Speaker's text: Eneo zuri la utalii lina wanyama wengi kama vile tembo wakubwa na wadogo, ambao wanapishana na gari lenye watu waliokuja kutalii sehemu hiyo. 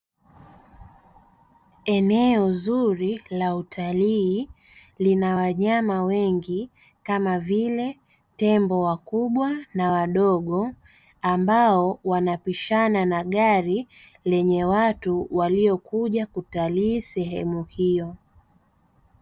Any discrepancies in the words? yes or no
no